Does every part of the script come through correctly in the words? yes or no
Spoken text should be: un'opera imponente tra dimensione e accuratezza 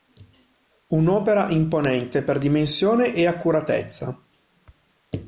no